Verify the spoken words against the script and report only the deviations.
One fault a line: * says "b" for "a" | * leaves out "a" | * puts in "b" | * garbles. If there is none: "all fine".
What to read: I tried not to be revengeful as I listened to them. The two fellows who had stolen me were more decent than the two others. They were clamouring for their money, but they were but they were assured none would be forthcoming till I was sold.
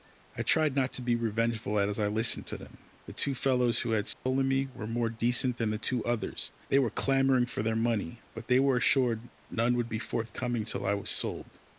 * leaves out "but they were"